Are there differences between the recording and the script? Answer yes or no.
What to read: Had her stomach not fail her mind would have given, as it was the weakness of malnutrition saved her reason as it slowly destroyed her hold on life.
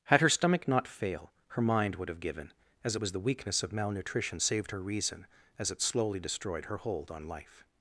no